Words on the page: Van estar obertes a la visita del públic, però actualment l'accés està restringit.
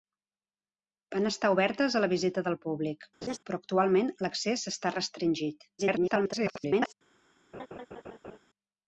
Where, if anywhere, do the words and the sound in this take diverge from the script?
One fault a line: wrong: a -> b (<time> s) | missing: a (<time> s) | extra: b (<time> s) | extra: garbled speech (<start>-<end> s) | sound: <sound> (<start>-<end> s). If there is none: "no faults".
sound: laugh (3.2-3.4 s)
extra: garbled speech (5.8-6.9 s)
sound: laugh (7.5-8.4 s)